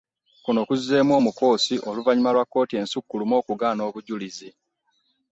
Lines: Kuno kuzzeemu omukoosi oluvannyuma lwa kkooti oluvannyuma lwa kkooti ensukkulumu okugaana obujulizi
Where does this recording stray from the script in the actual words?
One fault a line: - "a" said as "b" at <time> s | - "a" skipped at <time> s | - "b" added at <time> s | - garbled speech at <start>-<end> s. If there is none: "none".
- "oluvannyuma lwa kkooti" skipped at 2.7 s